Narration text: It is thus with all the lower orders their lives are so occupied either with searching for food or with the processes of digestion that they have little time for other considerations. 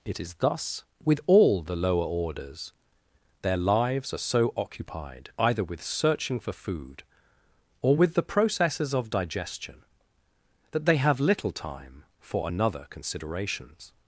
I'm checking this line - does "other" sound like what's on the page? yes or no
no